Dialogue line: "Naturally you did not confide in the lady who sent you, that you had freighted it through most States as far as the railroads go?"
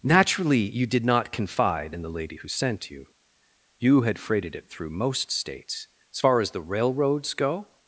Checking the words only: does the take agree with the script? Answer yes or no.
no